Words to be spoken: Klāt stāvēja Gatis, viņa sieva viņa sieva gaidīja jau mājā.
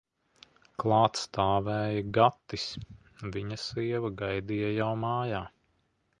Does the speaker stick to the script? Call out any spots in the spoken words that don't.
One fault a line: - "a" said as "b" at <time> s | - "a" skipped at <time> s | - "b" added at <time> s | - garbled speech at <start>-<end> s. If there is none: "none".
- "viņa sieva" skipped at 4.1 s